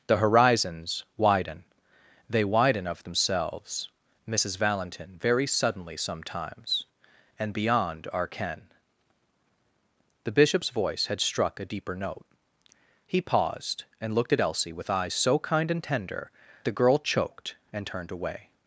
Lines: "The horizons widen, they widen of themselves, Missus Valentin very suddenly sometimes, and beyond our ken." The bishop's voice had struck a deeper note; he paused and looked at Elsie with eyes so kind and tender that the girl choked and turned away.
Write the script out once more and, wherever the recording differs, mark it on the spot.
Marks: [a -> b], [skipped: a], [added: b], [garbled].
"The horizons widen, they widen of themselves, Missus Valentin very suddenly sometimes, and beyond our ken." The bishop's voice had struck a deeper note; he paused and looked at Elsie with eyes so kind and tender [skipped: that] the girl choked and turned away.